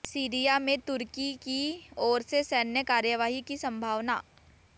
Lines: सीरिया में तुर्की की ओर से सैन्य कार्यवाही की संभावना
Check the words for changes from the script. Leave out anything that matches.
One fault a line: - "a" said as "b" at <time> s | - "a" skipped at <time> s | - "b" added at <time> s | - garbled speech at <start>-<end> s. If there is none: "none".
none